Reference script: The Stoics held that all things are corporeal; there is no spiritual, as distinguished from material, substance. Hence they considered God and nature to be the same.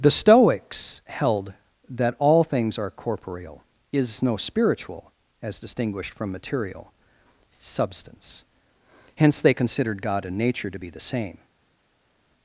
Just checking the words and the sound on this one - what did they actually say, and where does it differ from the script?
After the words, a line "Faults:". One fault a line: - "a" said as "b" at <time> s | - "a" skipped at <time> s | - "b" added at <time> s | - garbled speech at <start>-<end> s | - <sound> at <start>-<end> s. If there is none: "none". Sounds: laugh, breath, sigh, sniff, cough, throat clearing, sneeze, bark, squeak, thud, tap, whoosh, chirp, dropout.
The Stoics held that all things are corporeal; is no spiritual, as distinguished from material, substance. Hence they considered God and nature to be the same.
Faults:
- "there" skipped at 3.6 s